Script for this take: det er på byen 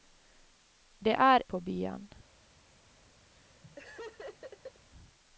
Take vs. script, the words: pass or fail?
pass